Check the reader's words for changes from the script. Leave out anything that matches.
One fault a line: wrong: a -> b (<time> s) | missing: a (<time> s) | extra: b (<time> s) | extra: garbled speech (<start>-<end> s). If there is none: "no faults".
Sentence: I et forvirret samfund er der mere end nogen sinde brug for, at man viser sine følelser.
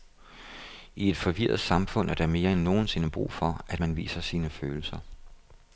no faults